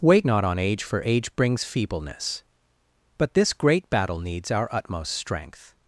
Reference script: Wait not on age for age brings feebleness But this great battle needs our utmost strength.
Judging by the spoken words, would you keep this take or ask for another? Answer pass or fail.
pass